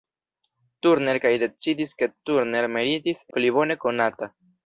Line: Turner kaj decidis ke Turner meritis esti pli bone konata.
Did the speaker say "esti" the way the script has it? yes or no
no